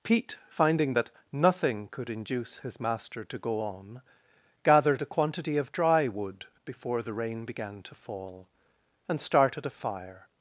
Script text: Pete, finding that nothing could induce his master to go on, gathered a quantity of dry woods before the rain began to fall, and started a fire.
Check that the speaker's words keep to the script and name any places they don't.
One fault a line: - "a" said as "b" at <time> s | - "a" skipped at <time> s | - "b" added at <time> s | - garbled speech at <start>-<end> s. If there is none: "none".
- "woods" said as "wood" at 6.1 s